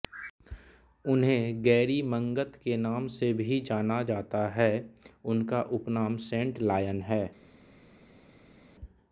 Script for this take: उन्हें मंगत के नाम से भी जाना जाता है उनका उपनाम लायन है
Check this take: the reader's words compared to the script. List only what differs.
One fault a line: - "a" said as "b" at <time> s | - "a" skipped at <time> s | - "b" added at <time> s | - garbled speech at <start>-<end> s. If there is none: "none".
- "गैरी" added at 1.6 s
- "सेंट" added at 6.3 s